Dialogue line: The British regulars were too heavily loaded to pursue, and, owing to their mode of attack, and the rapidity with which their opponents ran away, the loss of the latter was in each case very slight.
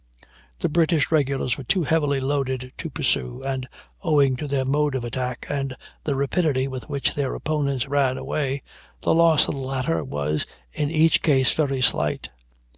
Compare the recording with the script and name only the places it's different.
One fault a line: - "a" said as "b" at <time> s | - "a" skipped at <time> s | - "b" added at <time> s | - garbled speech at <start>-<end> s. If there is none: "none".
none